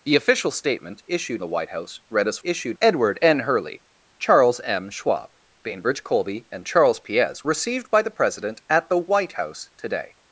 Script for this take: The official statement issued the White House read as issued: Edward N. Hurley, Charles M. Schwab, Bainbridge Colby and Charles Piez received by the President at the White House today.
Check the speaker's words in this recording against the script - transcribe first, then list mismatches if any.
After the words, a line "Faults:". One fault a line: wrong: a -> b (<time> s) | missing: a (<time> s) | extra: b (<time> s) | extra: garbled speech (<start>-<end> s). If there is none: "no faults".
The official statement issued the White House read as issued: Edward N. Hurley, Charles M. Schwab, Bainbridge Colby and Charles Piez received by the President at the White House today.
Faults:
no faults